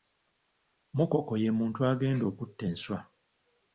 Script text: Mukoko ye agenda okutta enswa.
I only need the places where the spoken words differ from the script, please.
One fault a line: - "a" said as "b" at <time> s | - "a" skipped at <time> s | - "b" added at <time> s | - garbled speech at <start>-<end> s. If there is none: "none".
- "muntu" added at 1.6 s